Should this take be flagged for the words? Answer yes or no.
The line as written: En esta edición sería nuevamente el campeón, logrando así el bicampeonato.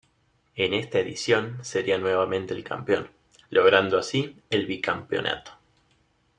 no